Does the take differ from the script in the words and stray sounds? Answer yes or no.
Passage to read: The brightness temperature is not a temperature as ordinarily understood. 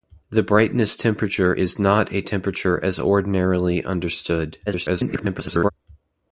yes